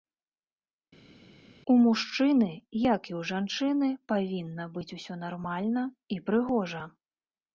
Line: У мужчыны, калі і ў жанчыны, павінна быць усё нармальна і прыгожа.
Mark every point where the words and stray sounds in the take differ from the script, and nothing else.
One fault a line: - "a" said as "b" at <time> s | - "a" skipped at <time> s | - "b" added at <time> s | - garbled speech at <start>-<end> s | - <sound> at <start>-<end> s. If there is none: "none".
- "калі" said as "як" at 2.8 s